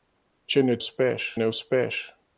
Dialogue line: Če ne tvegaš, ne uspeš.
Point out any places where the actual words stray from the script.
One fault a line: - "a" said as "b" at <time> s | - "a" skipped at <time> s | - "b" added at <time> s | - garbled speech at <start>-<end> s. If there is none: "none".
- "tvegaš" said as "uspeš" at 0.8 s